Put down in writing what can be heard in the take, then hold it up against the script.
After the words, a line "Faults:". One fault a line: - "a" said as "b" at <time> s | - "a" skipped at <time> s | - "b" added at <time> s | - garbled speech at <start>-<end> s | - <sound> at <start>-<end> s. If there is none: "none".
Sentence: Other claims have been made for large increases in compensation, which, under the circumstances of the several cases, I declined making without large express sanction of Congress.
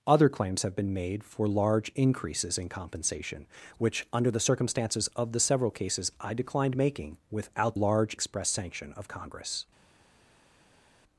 Other claims have been made for large increases in compensation, which, under the circumstances of the several cases, I declined making without large express sanction of Congress.
Faults:
none